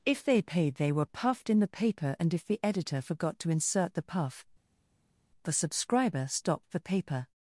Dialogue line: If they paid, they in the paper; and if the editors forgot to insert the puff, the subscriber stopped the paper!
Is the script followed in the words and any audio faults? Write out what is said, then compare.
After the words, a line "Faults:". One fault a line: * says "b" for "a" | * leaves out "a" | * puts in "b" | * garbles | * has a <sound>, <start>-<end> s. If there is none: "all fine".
If they paid, they were puffed in the paper; and if the editor forgot to insert the puff, the subscriber stopped the paper!
Faults:
* puts in "were puffed"
* says "editor" for "editors"